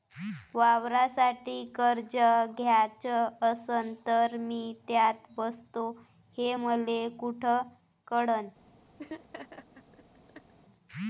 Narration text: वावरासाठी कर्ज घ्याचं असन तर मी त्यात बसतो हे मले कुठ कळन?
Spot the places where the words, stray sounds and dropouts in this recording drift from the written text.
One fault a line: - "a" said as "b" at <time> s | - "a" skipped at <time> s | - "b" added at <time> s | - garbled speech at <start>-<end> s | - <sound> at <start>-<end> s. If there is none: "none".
- laugh at 9.0-10.5 s